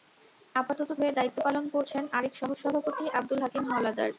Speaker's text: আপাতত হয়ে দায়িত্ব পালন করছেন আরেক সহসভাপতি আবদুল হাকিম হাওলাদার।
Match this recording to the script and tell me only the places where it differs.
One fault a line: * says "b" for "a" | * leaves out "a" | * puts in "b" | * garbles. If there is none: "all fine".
all fine